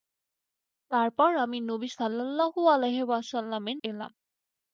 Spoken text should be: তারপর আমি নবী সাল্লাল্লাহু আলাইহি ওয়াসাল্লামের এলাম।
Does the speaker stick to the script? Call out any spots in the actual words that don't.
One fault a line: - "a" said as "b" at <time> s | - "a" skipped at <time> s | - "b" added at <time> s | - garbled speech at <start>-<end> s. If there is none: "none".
none